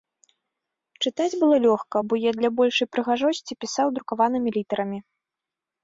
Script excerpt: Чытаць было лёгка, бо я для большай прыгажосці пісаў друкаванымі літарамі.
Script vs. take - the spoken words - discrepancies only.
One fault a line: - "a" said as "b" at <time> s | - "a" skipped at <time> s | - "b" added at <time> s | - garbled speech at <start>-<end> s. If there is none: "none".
none